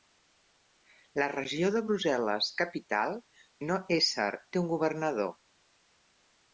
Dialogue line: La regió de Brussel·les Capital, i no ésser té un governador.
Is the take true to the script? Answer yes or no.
yes